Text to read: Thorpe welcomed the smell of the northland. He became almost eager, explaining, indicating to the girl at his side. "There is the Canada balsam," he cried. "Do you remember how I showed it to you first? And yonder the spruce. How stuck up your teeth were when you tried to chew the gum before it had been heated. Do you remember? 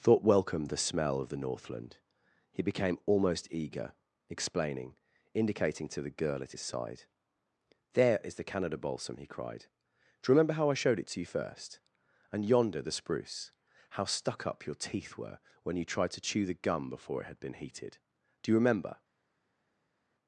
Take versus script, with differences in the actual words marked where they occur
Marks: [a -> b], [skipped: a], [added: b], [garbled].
[Thorpe -> Thought] welcomed the smell of the northland. He became almost eager, explaining, indicating to the girl at his side. "There is the Canada balsam," he cried. "Do you remember how I showed it to you first? And yonder the spruce. How stuck up your teeth were when you tried to chew the gum before it had been heated. Do you remember?